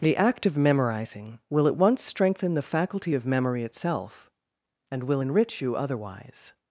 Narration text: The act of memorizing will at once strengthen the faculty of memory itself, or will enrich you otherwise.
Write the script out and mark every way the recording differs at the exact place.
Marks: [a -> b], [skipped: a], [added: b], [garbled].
The act of memorizing will at once strengthen the faculty of memory itself, [or -> and] will enrich you otherwise.